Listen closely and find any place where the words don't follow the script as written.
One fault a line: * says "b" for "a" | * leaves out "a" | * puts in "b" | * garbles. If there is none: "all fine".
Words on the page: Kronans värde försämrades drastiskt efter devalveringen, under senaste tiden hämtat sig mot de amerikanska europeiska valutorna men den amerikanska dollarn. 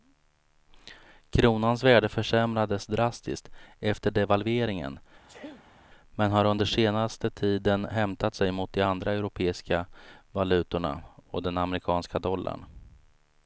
* puts in "men har"
* says "andra" for "amerikanska"
* says "och" for "men"